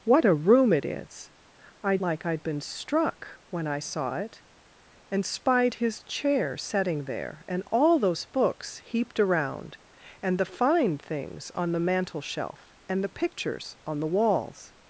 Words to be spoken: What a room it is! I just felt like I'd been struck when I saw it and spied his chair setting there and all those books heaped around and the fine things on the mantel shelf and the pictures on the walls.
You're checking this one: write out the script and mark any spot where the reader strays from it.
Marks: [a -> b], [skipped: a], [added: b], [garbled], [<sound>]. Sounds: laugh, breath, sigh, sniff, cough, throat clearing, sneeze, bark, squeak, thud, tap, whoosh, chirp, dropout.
What a room it is! I [skipped: just felt] like I'd been struck when I saw it and spied his chair setting there and all those books heaped around and the fine things on the mantel shelf and the pictures on the walls.